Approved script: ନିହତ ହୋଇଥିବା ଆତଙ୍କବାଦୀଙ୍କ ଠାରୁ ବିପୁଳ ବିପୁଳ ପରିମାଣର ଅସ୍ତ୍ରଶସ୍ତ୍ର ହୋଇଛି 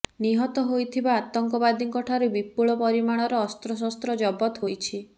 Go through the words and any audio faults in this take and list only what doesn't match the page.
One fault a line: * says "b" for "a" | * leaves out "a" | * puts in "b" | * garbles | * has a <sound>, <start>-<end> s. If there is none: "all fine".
* leaves out "ବିପୁଳ"
* puts in "ଜବତ"